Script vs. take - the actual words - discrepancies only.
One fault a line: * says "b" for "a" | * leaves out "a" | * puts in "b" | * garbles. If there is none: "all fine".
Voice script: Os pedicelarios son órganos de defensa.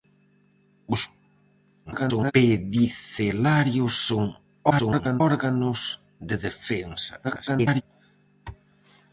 * garbles
* garbles
* garbles